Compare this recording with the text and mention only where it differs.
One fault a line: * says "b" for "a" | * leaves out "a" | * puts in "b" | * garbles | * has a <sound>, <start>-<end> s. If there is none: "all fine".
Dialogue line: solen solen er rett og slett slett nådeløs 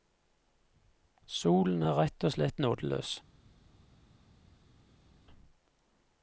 * leaves out "solen"
* leaves out "slett"